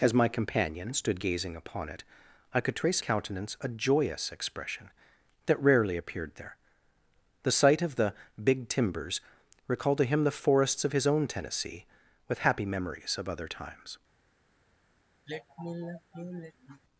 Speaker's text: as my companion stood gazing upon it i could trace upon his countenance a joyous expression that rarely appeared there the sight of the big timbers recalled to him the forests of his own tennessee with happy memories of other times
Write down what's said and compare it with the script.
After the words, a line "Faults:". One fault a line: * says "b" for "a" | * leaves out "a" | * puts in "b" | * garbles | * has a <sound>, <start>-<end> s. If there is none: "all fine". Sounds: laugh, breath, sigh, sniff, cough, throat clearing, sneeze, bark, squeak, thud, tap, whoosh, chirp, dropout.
as my companion stood gazing upon it i could trace countenance a joyous expression that rarely appeared there the sight of the big timbers recalled to him the forests of his own tennessee with happy memories of other times
Faults:
* leaves out "upon his"
* has a sigh, 15.3-16.8 s